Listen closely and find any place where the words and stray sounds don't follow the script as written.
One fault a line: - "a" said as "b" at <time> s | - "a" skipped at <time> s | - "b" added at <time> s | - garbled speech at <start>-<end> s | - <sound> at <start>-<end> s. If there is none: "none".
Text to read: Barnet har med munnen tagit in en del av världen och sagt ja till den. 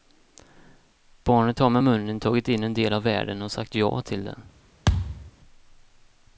- thud at 4.9-5.3 s